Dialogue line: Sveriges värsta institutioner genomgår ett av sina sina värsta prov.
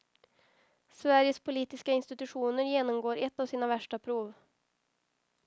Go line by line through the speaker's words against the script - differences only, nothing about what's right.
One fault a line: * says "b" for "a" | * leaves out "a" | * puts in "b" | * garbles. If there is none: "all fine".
* says "politiska" for "värsta"
* leaves out "sina"